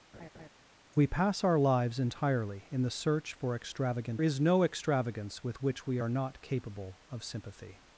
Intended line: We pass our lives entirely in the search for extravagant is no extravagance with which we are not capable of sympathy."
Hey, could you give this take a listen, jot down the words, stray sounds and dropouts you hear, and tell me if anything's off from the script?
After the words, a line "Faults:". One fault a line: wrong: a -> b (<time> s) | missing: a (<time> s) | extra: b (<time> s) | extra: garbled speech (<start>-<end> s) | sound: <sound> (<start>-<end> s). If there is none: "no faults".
We pass our lives entirely in the search for extravagant is no extravagance with which we are not capable of sympathy."
Faults:
sound: laugh (0.1-0.5 s)